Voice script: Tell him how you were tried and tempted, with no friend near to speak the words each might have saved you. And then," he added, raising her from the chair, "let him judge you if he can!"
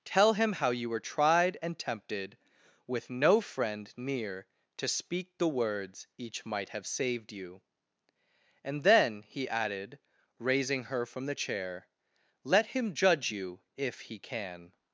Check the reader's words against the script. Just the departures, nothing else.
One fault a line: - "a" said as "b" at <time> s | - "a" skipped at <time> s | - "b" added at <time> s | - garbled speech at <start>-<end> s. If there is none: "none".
none